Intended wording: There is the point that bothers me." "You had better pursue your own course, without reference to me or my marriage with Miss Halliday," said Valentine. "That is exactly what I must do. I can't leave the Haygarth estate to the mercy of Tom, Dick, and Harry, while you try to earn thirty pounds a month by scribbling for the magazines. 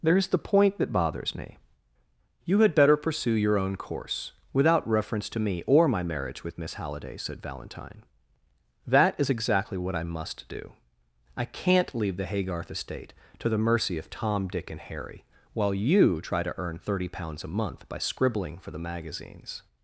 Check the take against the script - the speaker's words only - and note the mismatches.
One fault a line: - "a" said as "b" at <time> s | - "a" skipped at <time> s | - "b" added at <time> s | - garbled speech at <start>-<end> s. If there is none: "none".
none